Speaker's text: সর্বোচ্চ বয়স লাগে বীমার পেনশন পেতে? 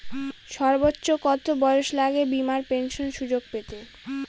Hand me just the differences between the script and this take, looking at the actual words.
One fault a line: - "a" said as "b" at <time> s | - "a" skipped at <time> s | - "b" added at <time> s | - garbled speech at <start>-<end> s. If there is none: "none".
- "কত" added at 1.2 s
- "সুযোগ" added at 3.2 s